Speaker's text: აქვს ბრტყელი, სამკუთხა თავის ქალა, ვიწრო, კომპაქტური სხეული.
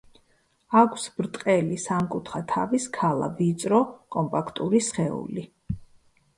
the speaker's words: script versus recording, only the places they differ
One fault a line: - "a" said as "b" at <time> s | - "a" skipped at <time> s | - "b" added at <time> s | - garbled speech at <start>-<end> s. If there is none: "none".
none